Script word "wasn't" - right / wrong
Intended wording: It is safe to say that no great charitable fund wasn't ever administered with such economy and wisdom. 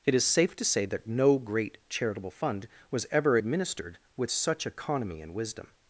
wrong